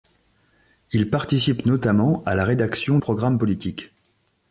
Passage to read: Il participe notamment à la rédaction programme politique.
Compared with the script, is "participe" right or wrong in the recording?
right